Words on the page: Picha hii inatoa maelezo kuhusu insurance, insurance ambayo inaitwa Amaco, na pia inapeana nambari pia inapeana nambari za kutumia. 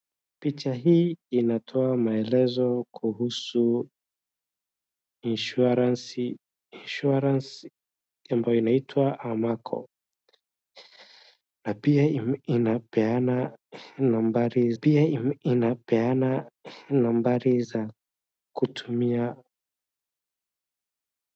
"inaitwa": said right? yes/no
yes